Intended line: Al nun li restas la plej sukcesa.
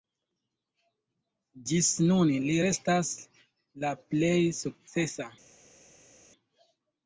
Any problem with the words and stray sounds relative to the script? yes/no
yes